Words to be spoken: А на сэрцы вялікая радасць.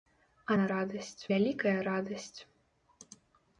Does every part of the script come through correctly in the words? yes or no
no